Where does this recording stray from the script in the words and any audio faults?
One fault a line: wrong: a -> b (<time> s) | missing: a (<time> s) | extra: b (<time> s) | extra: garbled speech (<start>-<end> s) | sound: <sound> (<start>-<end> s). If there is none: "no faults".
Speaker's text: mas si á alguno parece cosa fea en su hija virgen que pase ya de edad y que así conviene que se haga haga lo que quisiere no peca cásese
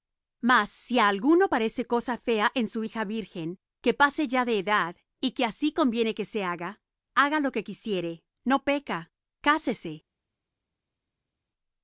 no faults